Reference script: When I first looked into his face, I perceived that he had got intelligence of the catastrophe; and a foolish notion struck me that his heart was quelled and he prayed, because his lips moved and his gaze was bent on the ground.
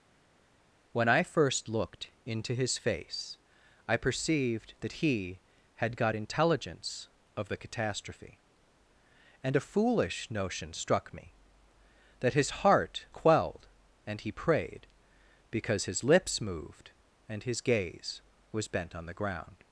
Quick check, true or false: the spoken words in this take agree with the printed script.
false